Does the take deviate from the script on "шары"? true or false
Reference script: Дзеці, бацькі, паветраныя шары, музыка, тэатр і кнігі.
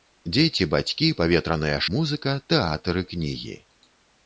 true